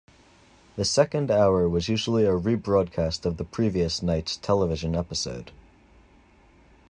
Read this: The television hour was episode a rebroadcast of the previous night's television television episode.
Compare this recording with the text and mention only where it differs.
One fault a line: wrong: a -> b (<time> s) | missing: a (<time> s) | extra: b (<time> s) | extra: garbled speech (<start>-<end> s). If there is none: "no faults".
wrong: television -> second (0.8 s)
wrong: episode -> usually (1.9 s)
missing: television (5.0 s)